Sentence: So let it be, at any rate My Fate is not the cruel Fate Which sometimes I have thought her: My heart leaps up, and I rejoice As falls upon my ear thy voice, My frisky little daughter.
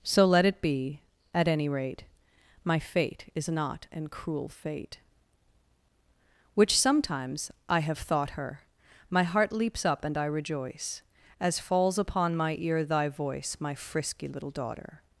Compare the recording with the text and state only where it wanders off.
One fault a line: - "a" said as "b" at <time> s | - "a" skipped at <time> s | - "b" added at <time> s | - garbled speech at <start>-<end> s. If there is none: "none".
- "the" said as "an" at 3.9 s